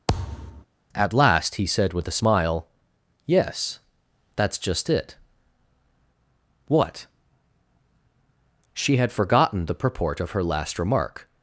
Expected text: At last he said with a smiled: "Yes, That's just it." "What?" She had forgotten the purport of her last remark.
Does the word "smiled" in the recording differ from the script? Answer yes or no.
yes